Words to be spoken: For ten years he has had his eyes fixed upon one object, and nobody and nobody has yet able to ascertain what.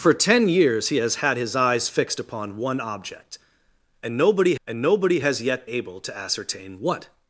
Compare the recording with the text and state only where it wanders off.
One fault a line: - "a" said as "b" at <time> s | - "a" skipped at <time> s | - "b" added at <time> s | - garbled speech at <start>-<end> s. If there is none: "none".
none